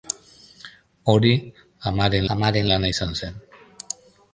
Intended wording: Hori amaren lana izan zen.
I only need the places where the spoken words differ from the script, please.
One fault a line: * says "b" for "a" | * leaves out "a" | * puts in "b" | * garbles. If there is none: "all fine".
* puts in "amaren"